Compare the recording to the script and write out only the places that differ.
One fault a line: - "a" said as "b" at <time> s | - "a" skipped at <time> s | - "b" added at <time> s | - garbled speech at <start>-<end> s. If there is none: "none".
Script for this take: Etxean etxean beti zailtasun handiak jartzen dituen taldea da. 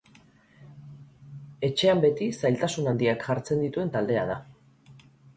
- "etxean" skipped at 2.0 s